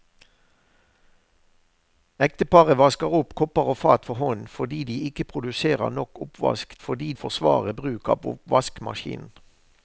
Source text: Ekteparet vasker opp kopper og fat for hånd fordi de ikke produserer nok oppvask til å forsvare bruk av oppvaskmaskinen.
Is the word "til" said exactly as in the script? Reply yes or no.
no